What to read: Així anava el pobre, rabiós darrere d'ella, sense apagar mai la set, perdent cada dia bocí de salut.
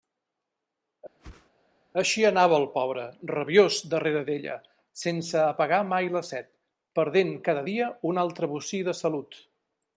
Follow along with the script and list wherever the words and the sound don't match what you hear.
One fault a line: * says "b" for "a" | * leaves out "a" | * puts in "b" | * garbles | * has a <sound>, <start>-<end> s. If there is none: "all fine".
* has a whoosh, 1.2-1.5 s
* puts in "un altre"